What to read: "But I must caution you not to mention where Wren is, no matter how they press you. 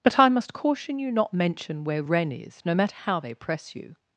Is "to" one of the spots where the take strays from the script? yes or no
yes